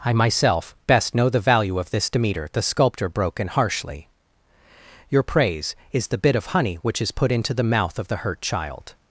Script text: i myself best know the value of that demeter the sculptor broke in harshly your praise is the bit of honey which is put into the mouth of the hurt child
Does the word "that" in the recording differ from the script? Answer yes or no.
yes